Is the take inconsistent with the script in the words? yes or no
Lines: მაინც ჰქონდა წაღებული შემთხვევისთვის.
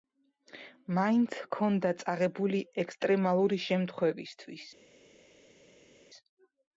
yes